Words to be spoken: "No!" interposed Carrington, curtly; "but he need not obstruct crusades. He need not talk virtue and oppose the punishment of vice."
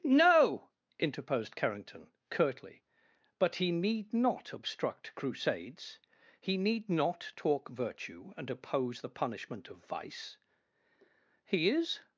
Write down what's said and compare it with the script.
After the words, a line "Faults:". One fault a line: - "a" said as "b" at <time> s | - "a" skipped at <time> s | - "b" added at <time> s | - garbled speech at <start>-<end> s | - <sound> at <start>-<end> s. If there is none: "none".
"No!" interposed Carrington, curtly; "but he need not obstruct crusades. He need not talk virtue and oppose the punishment of vice." "He is
Faults:
- "He is" added at 11.4 s